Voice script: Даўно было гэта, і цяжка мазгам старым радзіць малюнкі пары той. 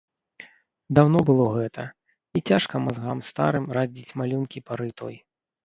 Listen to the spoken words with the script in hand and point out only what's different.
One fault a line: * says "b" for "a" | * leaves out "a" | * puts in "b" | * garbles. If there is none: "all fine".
all fine